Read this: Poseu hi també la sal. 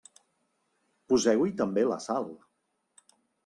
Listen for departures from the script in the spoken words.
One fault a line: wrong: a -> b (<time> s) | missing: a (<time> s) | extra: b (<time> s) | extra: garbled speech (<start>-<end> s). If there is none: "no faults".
no faults